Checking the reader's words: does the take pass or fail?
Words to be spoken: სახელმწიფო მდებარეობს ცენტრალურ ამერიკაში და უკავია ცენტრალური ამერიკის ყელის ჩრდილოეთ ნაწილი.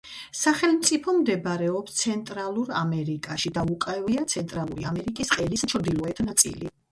pass